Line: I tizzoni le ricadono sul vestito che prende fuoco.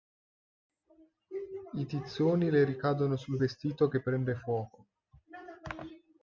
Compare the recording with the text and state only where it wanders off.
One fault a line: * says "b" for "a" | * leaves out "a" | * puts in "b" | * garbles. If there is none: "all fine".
all fine